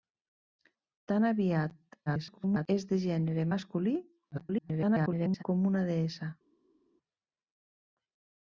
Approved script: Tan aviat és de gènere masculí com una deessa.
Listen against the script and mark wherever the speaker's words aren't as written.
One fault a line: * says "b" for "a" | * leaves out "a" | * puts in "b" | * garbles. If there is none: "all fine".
* garbles
* garbles